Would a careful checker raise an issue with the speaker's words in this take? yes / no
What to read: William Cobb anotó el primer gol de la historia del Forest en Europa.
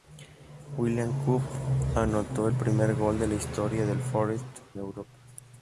yes